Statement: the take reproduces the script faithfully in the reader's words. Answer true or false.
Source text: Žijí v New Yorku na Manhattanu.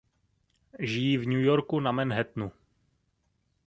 true